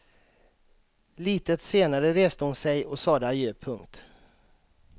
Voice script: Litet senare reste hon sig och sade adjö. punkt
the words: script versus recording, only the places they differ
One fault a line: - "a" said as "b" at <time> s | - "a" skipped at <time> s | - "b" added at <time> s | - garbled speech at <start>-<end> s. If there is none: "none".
none